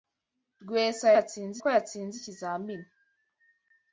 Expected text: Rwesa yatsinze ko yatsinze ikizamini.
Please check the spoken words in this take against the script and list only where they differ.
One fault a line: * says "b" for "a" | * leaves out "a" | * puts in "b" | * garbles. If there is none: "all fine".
all fine